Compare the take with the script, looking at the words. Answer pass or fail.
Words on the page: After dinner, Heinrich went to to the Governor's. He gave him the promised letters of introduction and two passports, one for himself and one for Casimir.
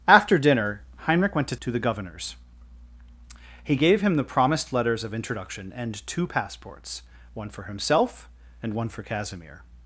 pass